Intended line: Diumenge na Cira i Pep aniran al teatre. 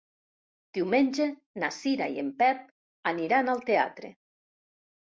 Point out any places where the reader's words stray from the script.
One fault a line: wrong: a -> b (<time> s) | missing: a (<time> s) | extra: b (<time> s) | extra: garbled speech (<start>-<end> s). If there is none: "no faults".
extra: en (2.2 s)